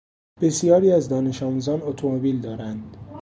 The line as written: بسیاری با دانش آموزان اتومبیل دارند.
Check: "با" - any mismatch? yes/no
yes